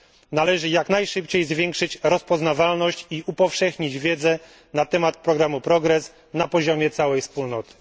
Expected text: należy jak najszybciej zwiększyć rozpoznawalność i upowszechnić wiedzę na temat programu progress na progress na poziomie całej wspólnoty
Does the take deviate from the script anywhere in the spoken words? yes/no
yes